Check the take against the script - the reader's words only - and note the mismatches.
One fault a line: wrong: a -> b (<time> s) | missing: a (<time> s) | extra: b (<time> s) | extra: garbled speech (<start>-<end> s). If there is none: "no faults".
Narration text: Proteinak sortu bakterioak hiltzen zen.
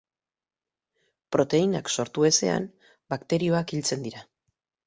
extra: ezean (2.3 s)
wrong: zen -> dira (4.1 s)